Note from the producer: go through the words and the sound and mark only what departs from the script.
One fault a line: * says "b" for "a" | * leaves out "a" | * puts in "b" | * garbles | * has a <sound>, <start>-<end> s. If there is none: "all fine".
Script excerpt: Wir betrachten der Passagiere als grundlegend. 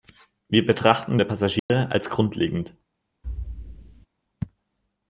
* has a dropout, 1.6-1.7 s
* has a thud, 3.2-4.1 s